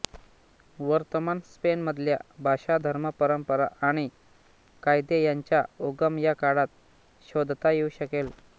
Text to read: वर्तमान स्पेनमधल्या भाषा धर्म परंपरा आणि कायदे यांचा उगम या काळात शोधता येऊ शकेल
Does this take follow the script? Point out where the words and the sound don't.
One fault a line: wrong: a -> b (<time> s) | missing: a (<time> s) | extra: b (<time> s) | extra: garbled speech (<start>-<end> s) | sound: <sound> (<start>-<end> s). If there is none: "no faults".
no faults